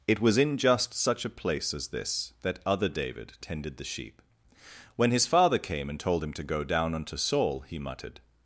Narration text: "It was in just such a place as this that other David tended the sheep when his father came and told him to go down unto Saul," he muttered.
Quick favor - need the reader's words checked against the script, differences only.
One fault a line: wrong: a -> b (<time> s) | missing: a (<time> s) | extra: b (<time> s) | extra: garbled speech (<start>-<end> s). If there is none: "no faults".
no faults